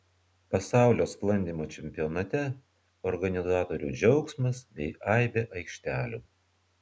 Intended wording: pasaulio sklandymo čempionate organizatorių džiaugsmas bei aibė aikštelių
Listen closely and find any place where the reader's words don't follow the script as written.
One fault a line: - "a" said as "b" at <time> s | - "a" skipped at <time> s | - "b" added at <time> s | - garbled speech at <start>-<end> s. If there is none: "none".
none